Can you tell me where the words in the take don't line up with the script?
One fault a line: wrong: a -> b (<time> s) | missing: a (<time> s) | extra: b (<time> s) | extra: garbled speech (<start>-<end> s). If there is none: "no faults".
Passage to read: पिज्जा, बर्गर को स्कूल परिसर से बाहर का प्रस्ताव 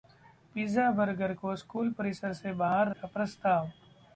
no faults